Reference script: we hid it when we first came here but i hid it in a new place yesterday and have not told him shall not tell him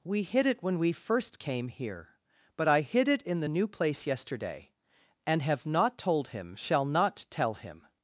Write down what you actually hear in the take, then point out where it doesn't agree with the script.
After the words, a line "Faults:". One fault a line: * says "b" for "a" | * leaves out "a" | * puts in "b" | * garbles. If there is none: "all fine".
we hid it when we first came here but i hid it in the new place yesterday and have not told him shall not tell him
Faults:
* says "the" for "a"